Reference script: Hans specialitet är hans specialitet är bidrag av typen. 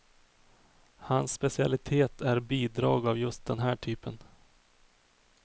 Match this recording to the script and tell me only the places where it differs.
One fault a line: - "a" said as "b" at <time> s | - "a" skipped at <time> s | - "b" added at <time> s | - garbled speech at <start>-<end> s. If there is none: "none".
- "hans specialitet är bidrag av" said as "bidrag av just den här" at 2.4 s